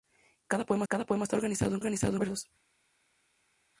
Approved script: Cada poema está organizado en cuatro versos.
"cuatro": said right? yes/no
no